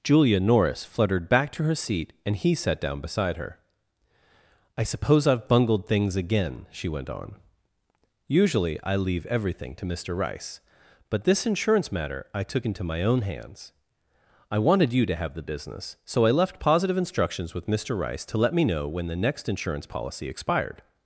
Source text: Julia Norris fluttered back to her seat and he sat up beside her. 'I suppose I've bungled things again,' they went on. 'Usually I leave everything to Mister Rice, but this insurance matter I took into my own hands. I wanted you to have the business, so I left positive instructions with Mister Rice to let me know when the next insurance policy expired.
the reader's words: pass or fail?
fail